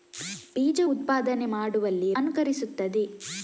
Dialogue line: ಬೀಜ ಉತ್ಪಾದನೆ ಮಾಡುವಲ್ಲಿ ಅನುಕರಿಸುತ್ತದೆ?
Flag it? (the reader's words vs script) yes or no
no